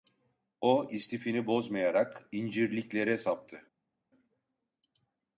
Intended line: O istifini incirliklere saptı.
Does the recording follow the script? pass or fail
fail